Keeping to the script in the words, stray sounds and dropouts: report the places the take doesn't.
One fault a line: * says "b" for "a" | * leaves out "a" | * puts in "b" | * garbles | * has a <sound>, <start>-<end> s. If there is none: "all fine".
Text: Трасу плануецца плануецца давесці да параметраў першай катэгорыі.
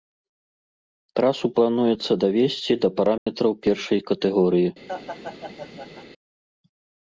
* leaves out "плануецца"
* has a dropout, 3.2-3.3 s
* has a laugh, 4.9-6.1 s